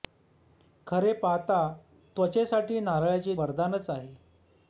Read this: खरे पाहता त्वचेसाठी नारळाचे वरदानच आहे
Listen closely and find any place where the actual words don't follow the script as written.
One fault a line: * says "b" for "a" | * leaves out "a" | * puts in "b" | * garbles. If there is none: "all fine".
all fine